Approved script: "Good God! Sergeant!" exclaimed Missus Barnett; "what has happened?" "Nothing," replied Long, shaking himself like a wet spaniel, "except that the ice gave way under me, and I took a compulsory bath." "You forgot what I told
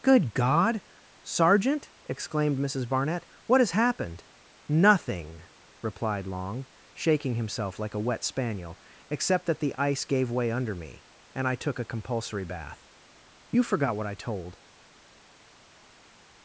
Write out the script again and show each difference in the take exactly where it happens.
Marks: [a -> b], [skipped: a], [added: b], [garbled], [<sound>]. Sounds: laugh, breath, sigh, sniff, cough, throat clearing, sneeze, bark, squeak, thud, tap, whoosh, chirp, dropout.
"Good God! Sergeant!" exclaimed Missus Barnett; "what has happened?" "Nothing," replied Long, shaking himself like a wet spaniel, "except that the ice gave way under me, and I took a compulsory bath." "You forgot what I told